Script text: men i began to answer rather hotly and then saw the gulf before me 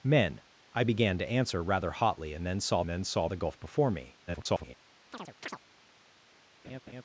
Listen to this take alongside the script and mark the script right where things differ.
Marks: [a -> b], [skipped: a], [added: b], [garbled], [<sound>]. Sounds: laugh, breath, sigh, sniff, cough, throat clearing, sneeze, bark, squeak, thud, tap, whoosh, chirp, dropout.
men i began to answer rather hotly and then saw [added: then saw] the gulf before me [garbled] [chirp] [laugh]